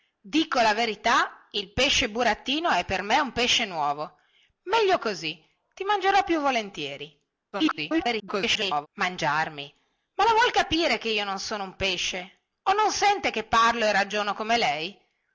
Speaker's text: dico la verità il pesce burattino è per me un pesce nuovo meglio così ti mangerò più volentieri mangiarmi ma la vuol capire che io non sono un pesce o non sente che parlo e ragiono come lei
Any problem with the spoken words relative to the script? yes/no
yes